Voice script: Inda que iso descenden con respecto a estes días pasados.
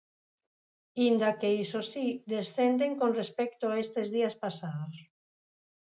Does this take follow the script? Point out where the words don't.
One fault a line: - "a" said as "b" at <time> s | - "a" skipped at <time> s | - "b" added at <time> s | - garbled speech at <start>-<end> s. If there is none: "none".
- "si" added at 1.9 s